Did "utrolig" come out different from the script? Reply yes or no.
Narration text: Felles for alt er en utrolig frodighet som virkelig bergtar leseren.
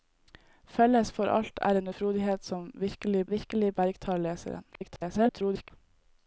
yes